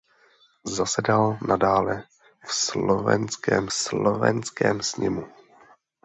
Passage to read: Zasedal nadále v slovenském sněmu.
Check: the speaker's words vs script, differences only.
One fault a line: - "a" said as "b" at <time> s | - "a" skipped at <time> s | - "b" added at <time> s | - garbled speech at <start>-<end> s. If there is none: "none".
- "slovenském" added at 3.7 s